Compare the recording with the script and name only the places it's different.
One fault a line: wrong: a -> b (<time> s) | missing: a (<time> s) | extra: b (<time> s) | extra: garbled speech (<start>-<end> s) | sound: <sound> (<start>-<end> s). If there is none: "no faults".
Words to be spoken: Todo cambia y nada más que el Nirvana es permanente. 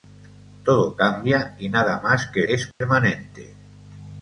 missing: el Nirvana (2.4 s)
sound: dropout (2.7-2.8 s)